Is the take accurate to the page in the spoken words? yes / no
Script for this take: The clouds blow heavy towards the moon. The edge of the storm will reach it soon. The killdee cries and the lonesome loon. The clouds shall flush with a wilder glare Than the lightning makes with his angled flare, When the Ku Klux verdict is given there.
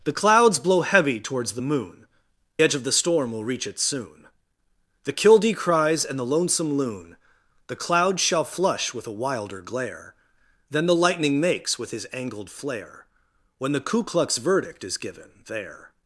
no